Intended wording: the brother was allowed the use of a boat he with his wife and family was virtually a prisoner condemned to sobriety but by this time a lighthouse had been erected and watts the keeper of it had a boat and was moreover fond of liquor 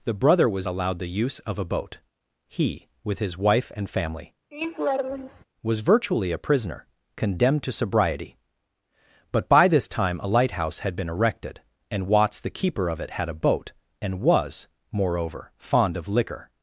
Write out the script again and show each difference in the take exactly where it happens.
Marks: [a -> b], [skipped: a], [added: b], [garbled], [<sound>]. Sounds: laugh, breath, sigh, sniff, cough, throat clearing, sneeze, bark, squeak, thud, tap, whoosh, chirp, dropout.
the brother was allowed the use of a boat he with his wife and family [laugh] was virtually a prisoner condemned to sobriety but by this time a lighthouse had been erected and watts the keeper of it had a boat and was moreover fond of liquor